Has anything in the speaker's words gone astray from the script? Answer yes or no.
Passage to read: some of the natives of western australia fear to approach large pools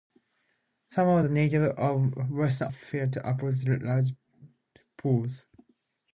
yes